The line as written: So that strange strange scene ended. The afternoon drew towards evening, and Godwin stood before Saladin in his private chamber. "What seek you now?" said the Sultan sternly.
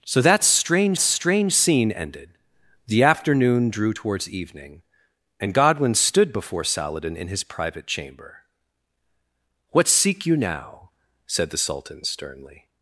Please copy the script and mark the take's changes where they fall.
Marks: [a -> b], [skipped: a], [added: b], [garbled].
So that strange strange scene ended. The afternoon drew towards evening, and Godwin stood before Saladin in his private chamber. "What seek you now?" said the Sultan sternly.